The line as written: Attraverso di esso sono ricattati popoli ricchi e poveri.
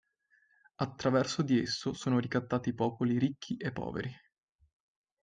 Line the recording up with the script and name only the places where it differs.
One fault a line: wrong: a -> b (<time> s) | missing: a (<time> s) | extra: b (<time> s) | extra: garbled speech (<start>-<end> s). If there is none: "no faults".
no faults